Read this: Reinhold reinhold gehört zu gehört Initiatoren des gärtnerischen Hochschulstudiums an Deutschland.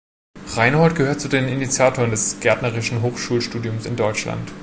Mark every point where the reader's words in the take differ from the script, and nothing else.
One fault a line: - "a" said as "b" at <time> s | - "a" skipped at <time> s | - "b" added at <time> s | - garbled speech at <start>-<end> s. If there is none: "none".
- "reinhold" skipped at 0.9 s
- "gehört" said as "den" at 1.3 s
- "an" said as "in" at 3.8 s